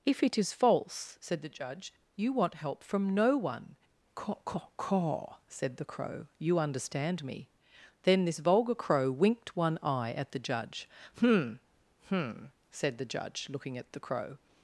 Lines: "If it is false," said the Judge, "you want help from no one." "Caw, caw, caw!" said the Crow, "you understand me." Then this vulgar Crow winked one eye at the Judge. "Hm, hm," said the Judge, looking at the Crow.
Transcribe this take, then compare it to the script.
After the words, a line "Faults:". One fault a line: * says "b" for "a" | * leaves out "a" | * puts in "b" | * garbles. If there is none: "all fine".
"If it is false," said the Judge, "you want help from no one." "Caw, caw, caw!" said the Crow, "you understand me." Then this vulgar Crow winked one eye at the Judge. "Hm, hm," said the Judge, looking at the Crow.
Faults:
all fine